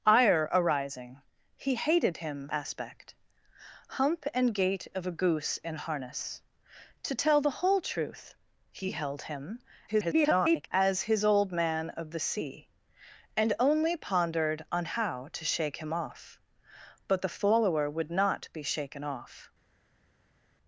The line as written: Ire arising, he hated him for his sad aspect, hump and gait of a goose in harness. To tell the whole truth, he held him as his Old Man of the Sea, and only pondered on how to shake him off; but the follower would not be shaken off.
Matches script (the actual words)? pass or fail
fail